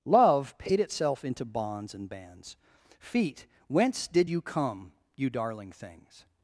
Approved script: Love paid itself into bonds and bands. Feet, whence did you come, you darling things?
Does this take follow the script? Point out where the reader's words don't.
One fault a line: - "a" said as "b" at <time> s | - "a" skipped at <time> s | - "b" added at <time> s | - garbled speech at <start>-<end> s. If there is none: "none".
none